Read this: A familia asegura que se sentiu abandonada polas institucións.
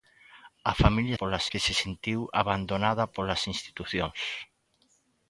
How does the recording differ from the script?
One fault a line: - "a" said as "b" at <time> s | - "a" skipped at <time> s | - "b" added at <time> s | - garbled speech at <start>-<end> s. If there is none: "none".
- "asegura" said as "polas" at 1.2 s